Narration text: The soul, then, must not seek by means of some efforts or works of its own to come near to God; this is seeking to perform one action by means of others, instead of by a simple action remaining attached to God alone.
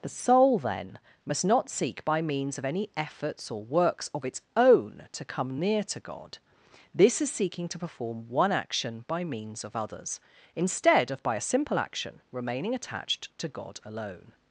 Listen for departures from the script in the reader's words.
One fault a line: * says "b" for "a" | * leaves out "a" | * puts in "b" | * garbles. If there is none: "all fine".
* says "any" for "some"